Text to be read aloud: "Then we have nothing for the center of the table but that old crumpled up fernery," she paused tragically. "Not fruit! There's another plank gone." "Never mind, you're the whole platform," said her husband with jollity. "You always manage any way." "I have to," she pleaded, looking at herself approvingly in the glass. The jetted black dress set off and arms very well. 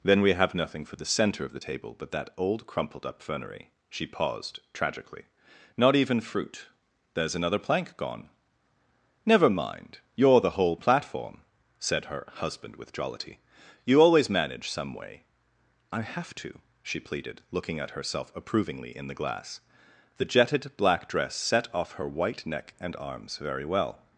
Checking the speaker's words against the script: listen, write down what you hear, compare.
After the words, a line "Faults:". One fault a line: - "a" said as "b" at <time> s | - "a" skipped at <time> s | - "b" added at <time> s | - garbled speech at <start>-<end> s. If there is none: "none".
"Then we have nothing for the center of the table but that old crumpled up fernery," she paused tragically. "Not even fruit! There's another plank gone." "Never mind, you're the whole platform," said her husband with jollity. "You always manage some way." "I have to," she pleaded, looking at herself approvingly in the glass. The jetted black dress set off her white neck and arms very well.
Faults:
- "even" added at 6.0 s
- "any" said as "some" at 14.7 s
- "her white neck" added at 21.9 s